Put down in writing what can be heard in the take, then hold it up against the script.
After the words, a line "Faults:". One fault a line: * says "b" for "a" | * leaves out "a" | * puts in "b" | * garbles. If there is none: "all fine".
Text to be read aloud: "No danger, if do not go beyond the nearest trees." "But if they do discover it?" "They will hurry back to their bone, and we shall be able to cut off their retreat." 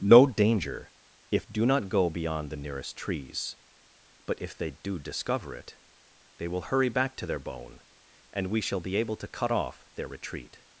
"No danger, if do not go beyond the nearest trees." "But if they do discover it?" "They will hurry back to their bone, and we shall be able to cut off their retreat."
Faults:
all fine